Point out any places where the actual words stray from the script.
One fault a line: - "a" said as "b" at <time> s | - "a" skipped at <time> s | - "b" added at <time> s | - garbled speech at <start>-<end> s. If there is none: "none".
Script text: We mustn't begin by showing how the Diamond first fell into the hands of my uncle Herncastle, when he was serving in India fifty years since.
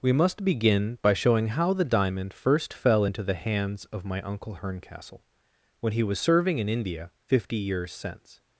- "mustn't" said as "must" at 0.1 s